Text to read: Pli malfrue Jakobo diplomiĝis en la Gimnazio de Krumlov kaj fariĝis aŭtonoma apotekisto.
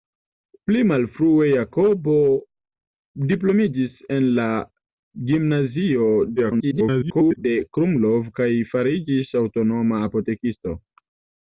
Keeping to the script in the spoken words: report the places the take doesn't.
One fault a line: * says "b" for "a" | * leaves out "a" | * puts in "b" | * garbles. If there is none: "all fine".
* garbles